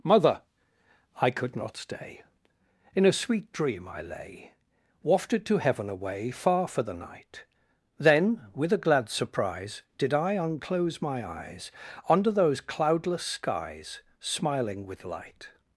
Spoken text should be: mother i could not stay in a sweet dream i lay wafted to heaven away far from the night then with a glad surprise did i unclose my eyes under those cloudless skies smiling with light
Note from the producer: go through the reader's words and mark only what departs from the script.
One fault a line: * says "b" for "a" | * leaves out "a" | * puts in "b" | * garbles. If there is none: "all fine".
* says "for" for "from"